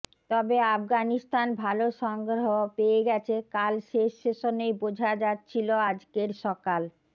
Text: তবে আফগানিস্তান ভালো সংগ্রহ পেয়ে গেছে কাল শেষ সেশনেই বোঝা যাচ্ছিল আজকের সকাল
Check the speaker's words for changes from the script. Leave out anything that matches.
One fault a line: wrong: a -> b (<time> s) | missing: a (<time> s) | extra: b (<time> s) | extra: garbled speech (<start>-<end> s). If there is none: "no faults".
no faults